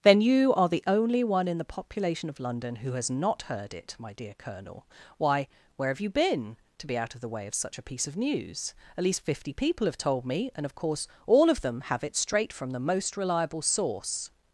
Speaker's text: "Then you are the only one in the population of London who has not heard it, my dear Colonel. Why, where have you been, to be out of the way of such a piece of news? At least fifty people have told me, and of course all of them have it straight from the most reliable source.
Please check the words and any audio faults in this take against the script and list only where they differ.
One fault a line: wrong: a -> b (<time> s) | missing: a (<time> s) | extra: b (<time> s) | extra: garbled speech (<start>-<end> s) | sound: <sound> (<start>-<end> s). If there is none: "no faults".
no faults